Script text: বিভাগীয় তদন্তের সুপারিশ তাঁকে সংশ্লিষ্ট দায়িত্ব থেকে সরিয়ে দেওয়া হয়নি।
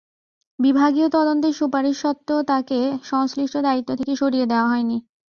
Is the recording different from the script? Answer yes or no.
yes